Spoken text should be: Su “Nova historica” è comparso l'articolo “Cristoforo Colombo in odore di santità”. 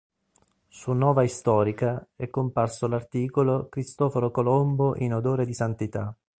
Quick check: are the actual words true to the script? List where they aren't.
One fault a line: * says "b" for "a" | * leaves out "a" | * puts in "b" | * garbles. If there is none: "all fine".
all fine